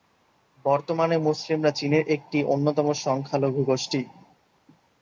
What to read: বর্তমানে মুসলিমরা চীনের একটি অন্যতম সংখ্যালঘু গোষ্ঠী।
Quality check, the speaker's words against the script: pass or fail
pass